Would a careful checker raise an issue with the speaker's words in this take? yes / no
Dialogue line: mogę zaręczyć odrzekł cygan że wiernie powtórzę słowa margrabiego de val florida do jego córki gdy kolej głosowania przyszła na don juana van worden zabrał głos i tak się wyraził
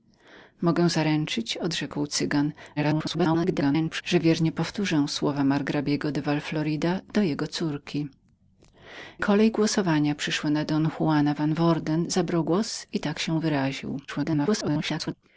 yes